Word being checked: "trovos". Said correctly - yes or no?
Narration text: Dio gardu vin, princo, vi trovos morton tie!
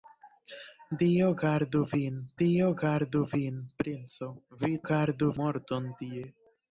no